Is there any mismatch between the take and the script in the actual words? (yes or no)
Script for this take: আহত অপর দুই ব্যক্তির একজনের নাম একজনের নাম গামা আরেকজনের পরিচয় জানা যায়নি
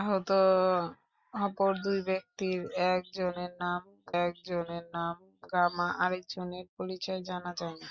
no